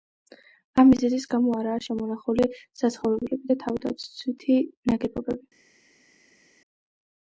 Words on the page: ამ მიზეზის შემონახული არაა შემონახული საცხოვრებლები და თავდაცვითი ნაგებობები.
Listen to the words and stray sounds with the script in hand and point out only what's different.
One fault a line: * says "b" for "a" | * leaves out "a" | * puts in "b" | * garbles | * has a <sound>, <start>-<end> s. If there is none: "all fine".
* says "გამო" for "შემონახული"